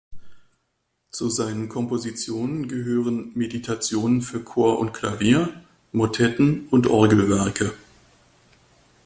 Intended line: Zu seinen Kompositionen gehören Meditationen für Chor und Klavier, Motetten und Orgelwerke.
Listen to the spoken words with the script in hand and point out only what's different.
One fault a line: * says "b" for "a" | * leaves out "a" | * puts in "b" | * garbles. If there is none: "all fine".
all fine